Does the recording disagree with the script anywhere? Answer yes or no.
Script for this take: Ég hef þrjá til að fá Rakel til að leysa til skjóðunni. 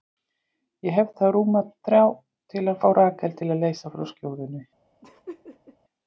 yes